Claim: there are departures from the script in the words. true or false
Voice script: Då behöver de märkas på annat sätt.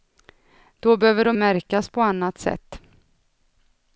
false